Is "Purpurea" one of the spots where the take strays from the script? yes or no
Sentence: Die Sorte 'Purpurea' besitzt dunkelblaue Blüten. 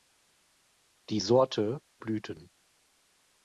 yes